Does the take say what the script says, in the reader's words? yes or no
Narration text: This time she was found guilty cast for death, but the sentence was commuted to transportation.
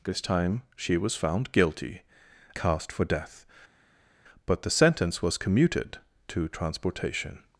yes